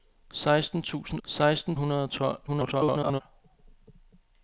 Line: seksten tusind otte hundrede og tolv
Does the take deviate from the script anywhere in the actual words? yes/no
yes